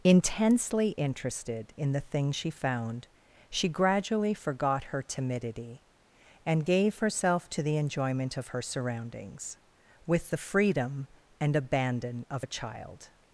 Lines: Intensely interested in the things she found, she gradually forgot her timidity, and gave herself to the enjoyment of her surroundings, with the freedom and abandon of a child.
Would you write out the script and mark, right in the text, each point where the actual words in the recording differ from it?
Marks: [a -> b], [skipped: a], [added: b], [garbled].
Intensely interested in the things she found, she gradually forgot her timidity, and gave herself to the enjoyment of her surroundings, with the freedom and abandon of a child.